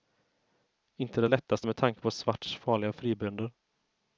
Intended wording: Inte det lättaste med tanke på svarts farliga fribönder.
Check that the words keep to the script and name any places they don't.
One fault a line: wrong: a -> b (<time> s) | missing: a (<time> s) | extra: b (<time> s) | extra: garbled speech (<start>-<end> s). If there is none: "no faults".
no faults